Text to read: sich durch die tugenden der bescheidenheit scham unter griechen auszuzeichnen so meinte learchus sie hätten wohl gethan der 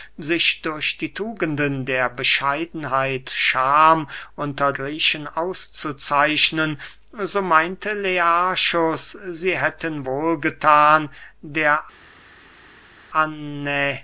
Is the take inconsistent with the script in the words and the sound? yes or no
no